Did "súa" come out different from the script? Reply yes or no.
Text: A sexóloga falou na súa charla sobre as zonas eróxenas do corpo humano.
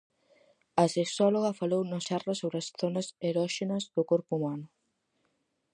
yes